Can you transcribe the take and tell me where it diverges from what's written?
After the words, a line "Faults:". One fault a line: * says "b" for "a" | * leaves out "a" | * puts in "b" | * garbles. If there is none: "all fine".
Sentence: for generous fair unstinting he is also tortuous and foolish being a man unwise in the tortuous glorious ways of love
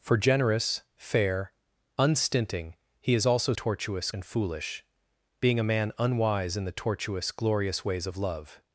for generous fair unstinting he is also tortuous and foolish being a man unwise in the tortuous glorious ways of love
Faults:
all fine